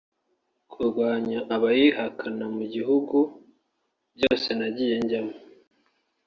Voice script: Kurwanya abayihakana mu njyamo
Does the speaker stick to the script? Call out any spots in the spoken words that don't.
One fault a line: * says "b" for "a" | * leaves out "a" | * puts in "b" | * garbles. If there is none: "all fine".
* puts in "bihugu byose nagiye"